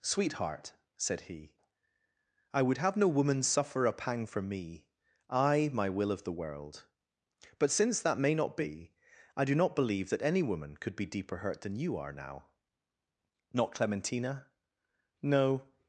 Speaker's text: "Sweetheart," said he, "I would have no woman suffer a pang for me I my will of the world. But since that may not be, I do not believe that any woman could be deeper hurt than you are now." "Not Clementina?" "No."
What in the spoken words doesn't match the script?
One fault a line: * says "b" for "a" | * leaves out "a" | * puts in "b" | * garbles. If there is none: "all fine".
all fine